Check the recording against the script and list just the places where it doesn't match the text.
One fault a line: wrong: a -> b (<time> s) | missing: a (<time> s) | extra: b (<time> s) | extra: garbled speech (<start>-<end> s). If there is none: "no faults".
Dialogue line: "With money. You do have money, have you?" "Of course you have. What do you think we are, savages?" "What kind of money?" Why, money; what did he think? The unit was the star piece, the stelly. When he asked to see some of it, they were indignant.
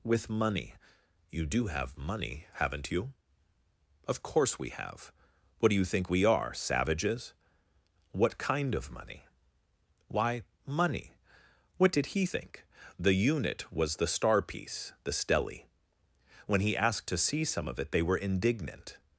wrong: have -> haven't (2.5 s)
wrong: you -> we (4.6 s)